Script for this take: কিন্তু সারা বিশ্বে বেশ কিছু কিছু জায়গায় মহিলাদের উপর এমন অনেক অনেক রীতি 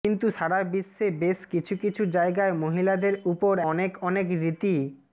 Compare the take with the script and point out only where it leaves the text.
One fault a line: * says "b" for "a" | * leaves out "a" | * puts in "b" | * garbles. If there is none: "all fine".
* leaves out "এমন"